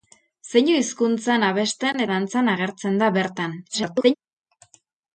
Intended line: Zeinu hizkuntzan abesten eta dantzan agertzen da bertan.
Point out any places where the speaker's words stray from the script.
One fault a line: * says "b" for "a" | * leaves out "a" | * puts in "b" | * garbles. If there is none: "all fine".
* leaves out "eta"
* garbles